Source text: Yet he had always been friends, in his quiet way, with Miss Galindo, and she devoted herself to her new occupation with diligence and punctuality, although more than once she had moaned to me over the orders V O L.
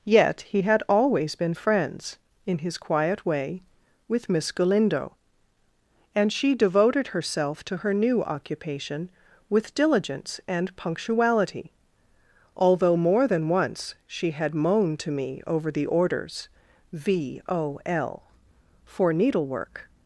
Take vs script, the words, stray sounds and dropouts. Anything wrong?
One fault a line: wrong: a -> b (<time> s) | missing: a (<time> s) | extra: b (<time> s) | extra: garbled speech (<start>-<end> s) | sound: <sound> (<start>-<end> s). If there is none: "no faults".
extra: for needlework (18.8 s)